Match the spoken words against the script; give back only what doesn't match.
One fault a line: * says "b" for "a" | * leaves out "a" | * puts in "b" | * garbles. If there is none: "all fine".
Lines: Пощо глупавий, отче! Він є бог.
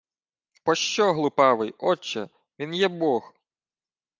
all fine